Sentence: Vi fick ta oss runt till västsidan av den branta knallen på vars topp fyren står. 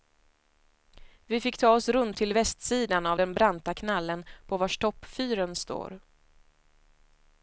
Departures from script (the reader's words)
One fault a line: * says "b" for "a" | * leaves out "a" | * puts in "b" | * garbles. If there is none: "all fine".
all fine